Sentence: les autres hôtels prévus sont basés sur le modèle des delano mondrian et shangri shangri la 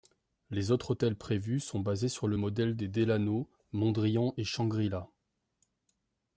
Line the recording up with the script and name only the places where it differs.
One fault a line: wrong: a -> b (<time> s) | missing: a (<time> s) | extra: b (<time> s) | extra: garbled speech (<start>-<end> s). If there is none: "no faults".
missing: shangri (4.9 s)